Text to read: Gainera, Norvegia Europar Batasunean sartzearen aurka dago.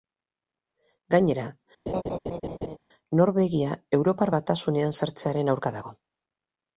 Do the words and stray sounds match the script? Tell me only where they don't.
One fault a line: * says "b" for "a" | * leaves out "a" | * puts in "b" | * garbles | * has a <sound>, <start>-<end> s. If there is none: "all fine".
* has a laugh, 1.9-2.8 s